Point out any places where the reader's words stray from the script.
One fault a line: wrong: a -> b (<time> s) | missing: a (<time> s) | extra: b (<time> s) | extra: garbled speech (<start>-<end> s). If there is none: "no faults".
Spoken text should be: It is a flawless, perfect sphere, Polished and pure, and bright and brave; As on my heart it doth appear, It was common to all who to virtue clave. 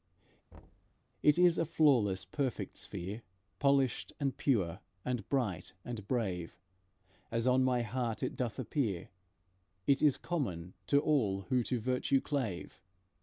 wrong: was -> is (10.0 s)